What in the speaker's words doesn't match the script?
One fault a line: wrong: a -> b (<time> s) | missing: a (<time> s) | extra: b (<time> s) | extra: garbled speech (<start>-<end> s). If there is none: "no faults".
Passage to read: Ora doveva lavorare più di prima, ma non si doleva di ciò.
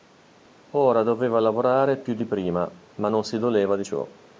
no faults